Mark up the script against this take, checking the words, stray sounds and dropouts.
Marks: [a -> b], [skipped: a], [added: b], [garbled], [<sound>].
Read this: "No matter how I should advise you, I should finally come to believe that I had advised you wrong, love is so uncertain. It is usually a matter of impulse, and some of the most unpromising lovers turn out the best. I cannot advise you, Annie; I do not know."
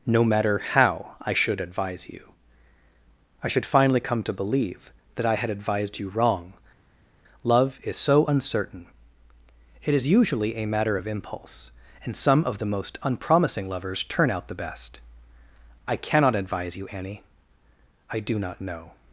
"No matter how I should advise you, I should finally come to believe that I had advised you wrong, love is so uncertain. It is usually a matter of impulse, and some of the most unpromising lovers turn out the best. I cannot advise you, Annie; I do not know."